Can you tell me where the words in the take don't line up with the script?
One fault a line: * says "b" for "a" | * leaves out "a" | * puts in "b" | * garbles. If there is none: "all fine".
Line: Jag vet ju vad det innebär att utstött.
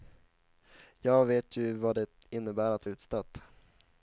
all fine